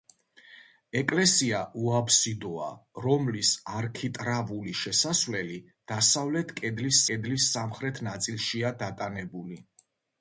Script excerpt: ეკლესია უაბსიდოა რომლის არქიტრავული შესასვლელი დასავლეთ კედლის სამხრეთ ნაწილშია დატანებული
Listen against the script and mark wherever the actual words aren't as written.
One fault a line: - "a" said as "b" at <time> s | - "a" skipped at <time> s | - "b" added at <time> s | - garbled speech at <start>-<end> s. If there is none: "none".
- "კედლის" added at 7.1 s